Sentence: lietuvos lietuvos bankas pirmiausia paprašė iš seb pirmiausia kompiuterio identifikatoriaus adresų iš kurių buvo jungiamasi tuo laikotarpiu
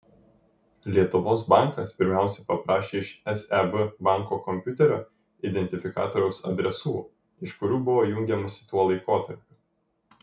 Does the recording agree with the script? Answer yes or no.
no